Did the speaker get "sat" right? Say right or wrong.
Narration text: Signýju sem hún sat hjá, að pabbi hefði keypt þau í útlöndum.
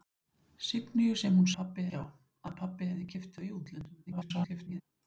wrong